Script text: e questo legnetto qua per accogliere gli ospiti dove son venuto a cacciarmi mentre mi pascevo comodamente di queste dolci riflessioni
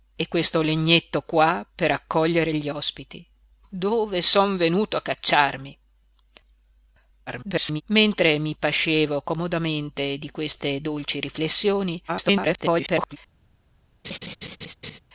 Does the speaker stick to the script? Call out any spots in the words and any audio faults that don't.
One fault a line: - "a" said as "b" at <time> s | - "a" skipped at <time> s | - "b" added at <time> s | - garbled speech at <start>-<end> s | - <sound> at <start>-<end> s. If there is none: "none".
- garbled speech at 7.3-7.8 s
- garbled speech at 12.1-13.2 s
- laugh at 14.0-15.0 s